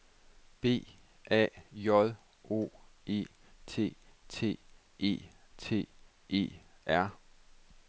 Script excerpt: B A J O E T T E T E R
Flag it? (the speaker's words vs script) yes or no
no